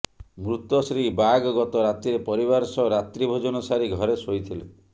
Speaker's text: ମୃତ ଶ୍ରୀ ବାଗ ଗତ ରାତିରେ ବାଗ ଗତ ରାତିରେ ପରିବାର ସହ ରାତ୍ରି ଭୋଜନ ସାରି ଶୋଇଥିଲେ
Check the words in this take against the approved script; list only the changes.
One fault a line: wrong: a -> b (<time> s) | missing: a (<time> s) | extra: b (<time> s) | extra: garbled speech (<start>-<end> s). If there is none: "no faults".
missing: ବାଗ ଗତ ରାତିରେ (2.2 s)
extra: ଘରେ (4.0 s)